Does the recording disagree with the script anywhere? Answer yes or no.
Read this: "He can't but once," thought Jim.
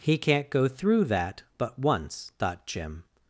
yes